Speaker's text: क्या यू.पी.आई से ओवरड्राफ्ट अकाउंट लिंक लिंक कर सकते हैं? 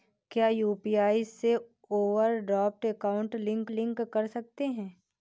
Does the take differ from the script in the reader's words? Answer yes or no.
no